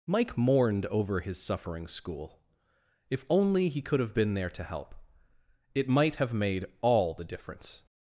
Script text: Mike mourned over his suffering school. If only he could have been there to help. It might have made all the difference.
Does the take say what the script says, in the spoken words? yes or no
yes